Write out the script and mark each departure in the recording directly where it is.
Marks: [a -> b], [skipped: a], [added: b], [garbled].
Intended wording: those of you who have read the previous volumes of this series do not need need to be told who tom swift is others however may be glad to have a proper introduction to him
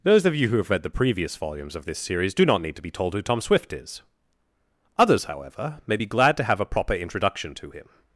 those of you who have read the previous volumes of this series do not need [skipped: need] to be told who tom swift is others however may be glad to have a proper introduction to him